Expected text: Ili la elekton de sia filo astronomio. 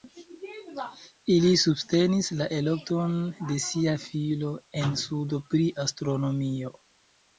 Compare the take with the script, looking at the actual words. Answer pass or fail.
fail